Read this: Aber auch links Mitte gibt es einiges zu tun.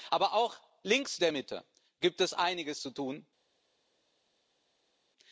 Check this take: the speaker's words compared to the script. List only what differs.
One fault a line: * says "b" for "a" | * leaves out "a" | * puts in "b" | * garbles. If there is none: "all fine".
* puts in "der"